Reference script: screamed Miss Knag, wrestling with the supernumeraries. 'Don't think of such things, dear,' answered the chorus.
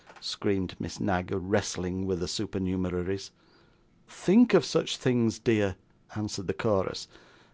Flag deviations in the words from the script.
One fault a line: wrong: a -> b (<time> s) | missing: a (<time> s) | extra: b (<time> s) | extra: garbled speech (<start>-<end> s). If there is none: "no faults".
missing: Don't (3.3 s)